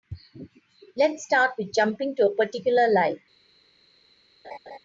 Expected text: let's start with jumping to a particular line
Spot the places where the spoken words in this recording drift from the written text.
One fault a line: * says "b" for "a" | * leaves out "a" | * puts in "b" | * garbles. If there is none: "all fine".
all fine